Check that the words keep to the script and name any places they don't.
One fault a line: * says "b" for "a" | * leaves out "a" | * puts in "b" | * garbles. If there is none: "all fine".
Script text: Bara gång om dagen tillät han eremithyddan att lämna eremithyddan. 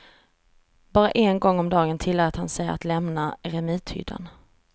* puts in "en"
* says "sig" for "eremithyddan"